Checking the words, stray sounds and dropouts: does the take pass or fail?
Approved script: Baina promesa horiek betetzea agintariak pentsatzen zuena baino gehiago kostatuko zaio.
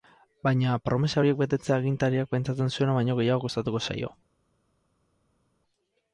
pass